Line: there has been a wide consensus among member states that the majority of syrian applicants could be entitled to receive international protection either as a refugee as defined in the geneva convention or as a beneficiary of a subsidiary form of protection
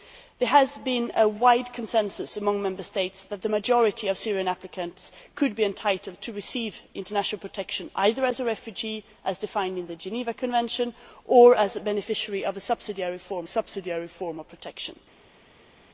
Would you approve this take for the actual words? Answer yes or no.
no